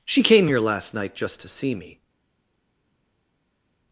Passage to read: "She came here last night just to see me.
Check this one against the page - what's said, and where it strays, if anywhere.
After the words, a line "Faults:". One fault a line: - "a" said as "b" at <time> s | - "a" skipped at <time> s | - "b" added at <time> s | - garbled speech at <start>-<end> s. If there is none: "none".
"She came here last night just to see me.
Faults:
none